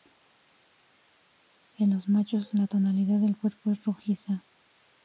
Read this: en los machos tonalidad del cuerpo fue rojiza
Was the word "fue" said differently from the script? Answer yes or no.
yes